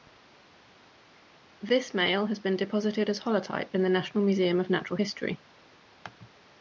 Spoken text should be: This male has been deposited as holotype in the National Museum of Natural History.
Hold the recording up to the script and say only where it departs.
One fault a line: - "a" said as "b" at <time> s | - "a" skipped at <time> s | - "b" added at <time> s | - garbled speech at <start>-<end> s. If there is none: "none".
none